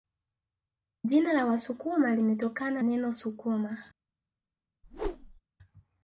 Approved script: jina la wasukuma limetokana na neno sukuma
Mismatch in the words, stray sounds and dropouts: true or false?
true